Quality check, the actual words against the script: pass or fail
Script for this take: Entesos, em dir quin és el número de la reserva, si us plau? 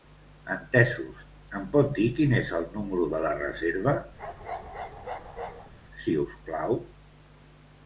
fail